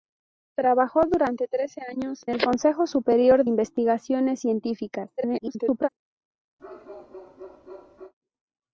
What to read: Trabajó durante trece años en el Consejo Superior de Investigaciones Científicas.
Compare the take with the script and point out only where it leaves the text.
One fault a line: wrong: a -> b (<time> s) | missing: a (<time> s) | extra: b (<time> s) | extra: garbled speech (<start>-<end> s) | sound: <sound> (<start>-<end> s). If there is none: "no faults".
missing: en (2.2 s)
missing: de (3.4 s)
extra: garbled speech (5.2-5.9 s)
sound: bark (6.6-8.1 s)